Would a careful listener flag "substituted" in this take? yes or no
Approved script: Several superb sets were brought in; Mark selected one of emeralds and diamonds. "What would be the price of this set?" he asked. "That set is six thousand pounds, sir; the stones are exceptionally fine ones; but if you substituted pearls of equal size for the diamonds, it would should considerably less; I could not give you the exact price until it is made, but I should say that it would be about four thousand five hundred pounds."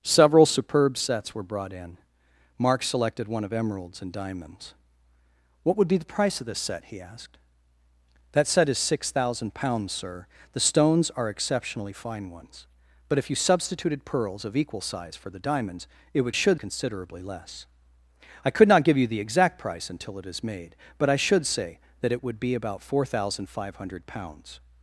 no